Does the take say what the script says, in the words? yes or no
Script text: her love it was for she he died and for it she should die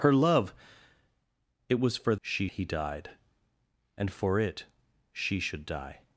yes